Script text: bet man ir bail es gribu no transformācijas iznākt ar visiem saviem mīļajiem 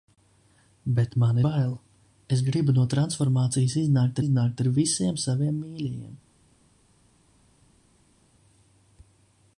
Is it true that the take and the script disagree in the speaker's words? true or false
true